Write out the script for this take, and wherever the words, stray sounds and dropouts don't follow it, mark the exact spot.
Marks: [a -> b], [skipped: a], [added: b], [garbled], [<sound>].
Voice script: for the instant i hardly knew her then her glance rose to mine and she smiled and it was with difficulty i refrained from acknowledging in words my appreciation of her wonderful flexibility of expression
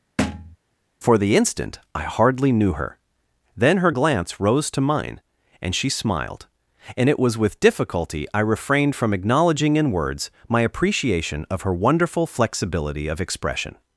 [thud] for the instant i hardly knew her then her glance rose to mine and she smiled and it was with difficulty i refrained from acknowledging in words my appreciation of her wonderful flexibility of expression